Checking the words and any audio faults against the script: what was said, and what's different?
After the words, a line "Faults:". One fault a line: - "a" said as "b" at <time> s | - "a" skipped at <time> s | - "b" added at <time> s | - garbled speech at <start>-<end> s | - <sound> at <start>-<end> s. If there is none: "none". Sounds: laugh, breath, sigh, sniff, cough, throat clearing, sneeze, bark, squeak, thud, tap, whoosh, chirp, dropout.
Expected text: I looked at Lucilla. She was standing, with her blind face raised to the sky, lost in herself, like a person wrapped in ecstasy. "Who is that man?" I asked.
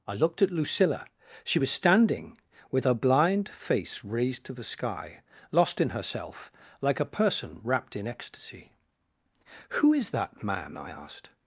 I looked at Lucilla. She was standing, with her blind face raised to the sky, lost in herself, like a person wrapped in ecstasy. "Who is that man?" I asked.
Faults:
none